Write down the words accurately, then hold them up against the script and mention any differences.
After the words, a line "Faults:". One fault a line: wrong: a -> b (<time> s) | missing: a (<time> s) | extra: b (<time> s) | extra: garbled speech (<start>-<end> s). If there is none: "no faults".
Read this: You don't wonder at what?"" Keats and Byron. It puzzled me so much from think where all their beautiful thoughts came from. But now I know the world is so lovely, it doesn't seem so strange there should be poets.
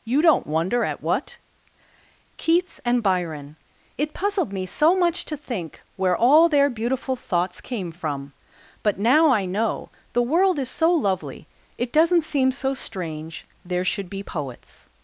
You don't wonder at what?"" Keats and Byron. It puzzled me so much to think where all their beautiful thoughts came from. But now I know the world is so lovely, it doesn't seem so strange there should be poets.
Faults:
wrong: from -> to (5.2 s)